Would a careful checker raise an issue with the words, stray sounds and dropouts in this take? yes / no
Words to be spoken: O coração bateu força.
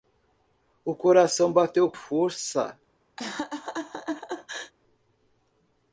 yes